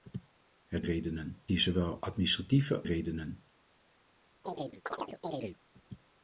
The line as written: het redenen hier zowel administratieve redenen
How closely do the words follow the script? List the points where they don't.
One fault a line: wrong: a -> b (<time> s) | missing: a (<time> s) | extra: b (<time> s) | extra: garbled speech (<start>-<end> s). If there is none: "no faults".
no faults